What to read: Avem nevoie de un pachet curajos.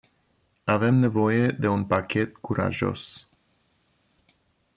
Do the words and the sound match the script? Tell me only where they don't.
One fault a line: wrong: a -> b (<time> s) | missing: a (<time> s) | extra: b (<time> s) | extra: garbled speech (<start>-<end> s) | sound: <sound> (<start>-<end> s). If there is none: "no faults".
no faults